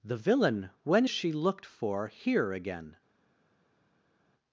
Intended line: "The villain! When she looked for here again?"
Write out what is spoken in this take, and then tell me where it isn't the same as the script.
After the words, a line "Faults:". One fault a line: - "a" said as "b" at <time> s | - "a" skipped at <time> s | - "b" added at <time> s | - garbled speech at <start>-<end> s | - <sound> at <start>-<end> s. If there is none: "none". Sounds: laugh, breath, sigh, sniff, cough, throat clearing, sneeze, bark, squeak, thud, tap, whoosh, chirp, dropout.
"The villain! When she looked for here again?"
Faults:
none